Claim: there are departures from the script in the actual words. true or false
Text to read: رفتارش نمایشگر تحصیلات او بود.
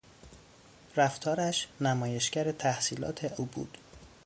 false